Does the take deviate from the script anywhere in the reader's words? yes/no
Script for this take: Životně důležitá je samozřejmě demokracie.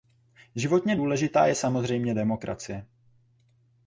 no